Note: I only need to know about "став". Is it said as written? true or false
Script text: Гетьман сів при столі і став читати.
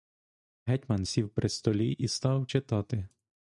true